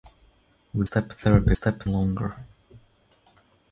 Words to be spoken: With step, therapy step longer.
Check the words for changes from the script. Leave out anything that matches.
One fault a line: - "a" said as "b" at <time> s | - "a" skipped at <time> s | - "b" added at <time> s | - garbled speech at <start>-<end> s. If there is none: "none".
none